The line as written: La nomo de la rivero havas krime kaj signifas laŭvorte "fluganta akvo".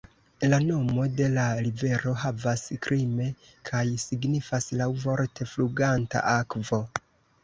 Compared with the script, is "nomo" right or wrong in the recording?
right